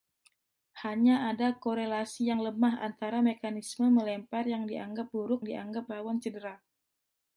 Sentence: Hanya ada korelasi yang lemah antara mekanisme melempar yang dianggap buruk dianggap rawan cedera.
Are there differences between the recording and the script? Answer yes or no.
no